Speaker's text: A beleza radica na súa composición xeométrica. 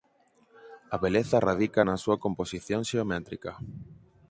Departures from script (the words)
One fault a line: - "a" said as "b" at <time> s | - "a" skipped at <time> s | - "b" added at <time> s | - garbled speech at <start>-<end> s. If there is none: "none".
none